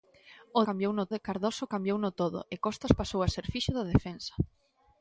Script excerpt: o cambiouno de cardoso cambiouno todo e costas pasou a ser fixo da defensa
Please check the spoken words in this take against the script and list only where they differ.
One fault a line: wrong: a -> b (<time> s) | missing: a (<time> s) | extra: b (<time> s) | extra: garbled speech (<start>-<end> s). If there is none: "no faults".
no faults